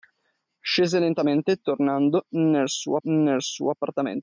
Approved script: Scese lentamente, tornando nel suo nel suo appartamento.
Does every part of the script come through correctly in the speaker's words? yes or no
yes